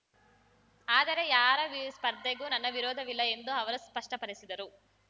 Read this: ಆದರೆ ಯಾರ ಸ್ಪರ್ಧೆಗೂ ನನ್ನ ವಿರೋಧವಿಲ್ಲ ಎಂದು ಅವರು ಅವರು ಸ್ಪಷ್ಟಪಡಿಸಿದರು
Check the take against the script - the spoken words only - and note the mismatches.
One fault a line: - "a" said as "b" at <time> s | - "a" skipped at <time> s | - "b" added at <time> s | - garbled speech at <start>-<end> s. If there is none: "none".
- "ಅವರು" skipped at 3.8 s